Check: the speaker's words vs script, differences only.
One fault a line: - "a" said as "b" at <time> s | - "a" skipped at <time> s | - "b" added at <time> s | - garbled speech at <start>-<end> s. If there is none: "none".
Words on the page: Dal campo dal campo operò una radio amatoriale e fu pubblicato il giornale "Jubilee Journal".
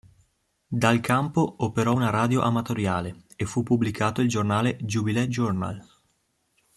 - "dal campo" skipped at 1.6 s